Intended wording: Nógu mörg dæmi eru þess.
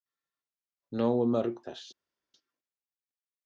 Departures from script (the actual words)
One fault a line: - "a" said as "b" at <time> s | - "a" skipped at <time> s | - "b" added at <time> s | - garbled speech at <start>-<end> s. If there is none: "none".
- "dæmi eru" skipped at 1.6 s